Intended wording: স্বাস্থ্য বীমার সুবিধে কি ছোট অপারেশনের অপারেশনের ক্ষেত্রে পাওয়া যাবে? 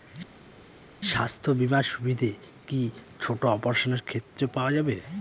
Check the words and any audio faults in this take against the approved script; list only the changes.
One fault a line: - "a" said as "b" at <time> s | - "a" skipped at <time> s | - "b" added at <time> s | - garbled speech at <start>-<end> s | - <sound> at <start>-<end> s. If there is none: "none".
- "অপারেশনের" skipped at 4.0 s